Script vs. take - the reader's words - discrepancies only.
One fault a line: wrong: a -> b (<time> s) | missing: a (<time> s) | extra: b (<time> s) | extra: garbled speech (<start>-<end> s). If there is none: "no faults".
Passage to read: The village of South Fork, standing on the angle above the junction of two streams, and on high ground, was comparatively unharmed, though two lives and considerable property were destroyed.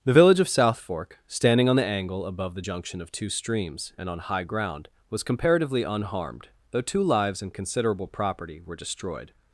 no faults